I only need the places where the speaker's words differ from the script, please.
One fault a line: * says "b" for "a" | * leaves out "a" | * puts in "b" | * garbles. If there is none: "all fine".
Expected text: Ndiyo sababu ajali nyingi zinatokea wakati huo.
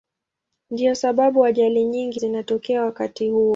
all fine